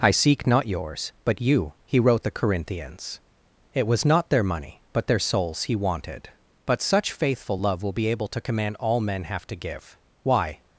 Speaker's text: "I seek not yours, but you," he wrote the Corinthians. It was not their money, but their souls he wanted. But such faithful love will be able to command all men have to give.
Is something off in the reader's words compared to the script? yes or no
yes